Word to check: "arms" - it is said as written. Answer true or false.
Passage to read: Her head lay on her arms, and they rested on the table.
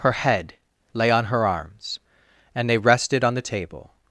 true